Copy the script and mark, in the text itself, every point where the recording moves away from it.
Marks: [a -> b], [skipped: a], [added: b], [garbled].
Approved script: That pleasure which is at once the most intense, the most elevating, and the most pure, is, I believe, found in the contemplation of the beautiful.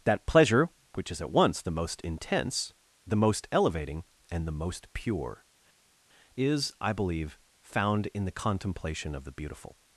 That pleasure which is at once the most intense, the most elevating, and the most pure, is, I believe, found in the contemplation of the beautiful.